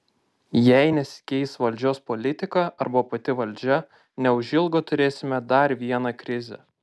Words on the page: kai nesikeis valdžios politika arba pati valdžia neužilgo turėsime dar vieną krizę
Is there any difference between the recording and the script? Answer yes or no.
yes